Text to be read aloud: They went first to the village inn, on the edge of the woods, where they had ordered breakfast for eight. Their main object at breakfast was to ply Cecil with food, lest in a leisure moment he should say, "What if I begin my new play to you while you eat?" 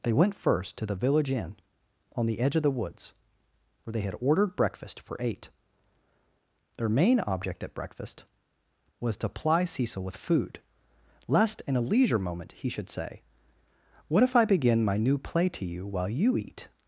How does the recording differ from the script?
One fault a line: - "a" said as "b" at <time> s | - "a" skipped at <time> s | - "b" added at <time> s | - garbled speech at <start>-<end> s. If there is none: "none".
none